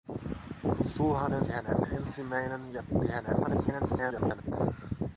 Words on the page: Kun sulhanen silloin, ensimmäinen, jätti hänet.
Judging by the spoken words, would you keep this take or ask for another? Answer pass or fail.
fail